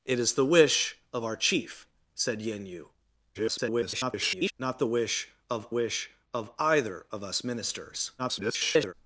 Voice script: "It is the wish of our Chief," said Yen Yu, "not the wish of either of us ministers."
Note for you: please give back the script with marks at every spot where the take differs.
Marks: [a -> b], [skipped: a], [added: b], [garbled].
"It is the wish of our Chief," said Yen Yu, [garbled] "not the wish of [added: wish of] either of us ministers." [garbled]